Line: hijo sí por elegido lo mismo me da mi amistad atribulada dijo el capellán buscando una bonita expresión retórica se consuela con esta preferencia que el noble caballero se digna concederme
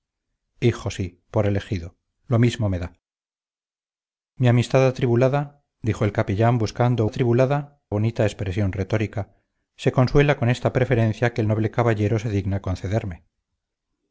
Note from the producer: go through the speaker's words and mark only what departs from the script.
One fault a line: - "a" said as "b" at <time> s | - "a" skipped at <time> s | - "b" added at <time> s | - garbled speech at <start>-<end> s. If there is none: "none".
- "una" said as "atribulada" at 7.0 s